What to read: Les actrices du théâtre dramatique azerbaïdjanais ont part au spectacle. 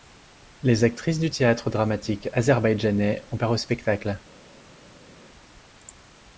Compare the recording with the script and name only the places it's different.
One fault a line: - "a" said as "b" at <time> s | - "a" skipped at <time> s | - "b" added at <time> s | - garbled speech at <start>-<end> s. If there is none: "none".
none